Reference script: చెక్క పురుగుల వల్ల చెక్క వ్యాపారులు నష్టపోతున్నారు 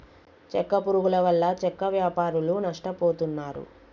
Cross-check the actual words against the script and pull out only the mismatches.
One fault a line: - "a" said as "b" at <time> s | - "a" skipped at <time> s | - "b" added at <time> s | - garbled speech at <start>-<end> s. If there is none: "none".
none